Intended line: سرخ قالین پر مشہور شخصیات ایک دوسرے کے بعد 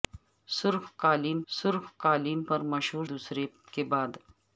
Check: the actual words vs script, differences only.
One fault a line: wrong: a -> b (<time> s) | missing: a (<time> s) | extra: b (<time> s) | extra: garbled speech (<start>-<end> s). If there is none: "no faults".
extra: سرخ قالین (1.5 s)
missing: شخصیات ایک (3.1 s)